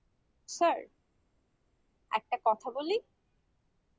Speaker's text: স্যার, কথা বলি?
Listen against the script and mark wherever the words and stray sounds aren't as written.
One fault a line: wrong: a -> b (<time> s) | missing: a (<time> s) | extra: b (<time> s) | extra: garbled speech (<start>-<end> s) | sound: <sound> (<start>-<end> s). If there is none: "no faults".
extra: একটা (2.1 s)